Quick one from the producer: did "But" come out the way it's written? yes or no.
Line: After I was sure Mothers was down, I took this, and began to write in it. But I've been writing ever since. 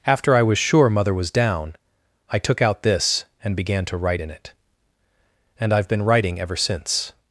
no